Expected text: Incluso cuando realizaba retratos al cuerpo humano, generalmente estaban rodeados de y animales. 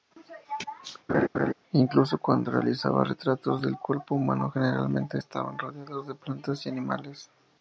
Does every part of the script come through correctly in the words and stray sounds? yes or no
no